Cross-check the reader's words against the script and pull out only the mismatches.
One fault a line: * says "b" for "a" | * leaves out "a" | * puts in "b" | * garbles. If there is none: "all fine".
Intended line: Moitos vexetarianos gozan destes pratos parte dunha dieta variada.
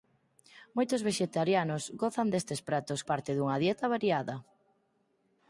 all fine